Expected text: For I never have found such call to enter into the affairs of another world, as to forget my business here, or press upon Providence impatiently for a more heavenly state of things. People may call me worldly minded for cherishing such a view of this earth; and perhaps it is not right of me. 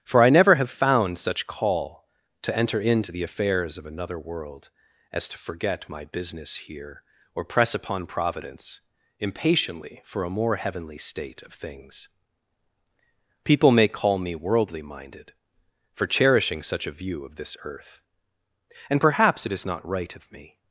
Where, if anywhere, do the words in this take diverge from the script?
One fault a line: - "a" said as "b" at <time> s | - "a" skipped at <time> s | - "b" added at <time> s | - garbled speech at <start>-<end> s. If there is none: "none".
none